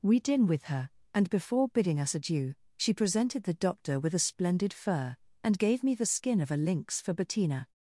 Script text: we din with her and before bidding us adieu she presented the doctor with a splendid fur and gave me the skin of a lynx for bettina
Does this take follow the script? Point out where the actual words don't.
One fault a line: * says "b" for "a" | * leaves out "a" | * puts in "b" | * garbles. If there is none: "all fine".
all fine